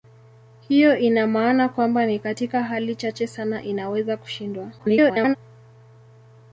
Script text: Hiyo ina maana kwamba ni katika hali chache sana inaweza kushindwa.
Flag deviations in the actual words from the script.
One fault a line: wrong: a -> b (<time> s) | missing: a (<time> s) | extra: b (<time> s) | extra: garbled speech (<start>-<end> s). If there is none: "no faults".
extra: garbled speech (4.8-5.4 s)